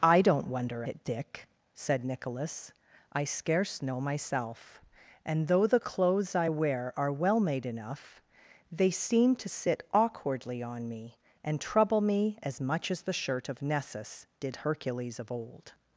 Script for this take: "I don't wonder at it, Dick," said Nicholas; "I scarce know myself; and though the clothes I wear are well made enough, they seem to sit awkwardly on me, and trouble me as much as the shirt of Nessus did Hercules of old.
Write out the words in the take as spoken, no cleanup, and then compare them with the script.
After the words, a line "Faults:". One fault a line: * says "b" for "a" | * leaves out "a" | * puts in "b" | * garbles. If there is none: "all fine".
"I don't wonder it, Dick," said Nicholas; "I scarce know myself; and though the clothes I wear are well made enough, they seem to sit awkwardly on me, and trouble me as much as the shirt of Nessus did Hercules of old.
Faults:
* leaves out "at"